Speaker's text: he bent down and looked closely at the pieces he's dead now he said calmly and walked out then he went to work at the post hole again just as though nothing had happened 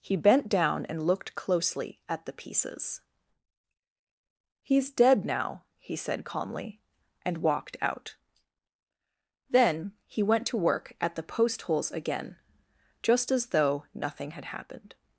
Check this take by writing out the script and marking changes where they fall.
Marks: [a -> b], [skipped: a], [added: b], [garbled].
he bent down and looked closely at the pieces he's dead now he said calmly and walked out then he went to work at the post [hole -> holes] again just as though nothing had happened